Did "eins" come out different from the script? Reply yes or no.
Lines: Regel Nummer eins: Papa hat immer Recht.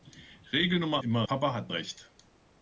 yes